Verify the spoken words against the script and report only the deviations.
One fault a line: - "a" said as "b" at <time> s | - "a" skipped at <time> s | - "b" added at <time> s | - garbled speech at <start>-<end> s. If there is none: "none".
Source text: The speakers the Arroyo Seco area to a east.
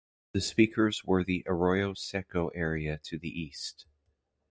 - "were" added at 1.1 s
- "a" said as "the" at 3.2 s